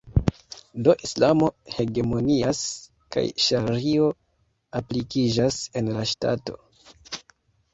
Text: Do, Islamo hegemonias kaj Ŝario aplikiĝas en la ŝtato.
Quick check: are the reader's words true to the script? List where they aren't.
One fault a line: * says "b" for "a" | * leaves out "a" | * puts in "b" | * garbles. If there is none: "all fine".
all fine